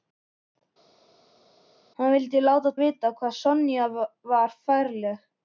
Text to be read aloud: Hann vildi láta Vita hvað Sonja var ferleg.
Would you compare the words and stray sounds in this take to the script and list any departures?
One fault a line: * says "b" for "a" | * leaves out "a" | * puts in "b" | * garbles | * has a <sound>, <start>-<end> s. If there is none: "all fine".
all fine